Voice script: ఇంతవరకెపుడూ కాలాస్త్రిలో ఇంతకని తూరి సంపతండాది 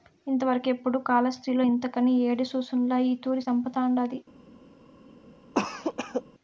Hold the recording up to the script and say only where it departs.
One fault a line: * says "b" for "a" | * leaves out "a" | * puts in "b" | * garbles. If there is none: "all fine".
* puts in "యేడి సూసుండ్ల ఈ"